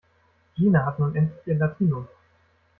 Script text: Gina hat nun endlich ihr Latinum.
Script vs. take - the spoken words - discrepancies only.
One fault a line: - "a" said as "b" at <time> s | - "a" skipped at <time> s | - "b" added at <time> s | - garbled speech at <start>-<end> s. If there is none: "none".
none